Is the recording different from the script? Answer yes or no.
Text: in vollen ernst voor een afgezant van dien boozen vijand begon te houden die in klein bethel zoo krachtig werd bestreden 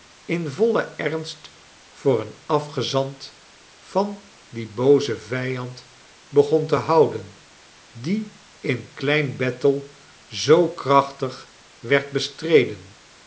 no